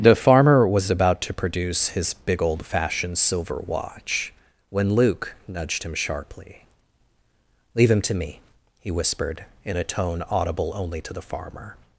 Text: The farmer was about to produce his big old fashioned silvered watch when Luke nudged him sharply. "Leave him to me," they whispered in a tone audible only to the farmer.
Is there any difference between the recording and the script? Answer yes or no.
yes